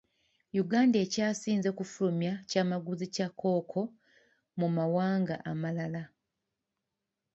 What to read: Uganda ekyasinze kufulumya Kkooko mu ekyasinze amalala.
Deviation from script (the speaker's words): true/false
true